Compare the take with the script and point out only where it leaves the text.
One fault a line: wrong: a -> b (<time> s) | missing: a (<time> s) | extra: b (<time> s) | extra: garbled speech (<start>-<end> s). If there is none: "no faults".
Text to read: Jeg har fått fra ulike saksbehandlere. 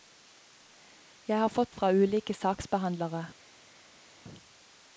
no faults